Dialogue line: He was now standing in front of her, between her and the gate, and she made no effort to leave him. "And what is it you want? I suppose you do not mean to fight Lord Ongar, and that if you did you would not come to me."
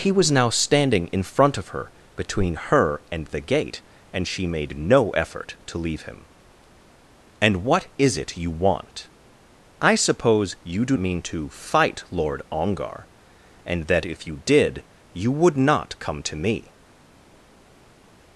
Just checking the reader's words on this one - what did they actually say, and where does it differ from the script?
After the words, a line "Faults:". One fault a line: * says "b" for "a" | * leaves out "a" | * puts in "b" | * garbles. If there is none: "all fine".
He was now standing in front of her, between her and the gate, and she made no effort to leave him. "And what is it you want? I suppose you do mean to fight Lord Ongar, and that if you did you would not come to me."
Faults:
* leaves out "not"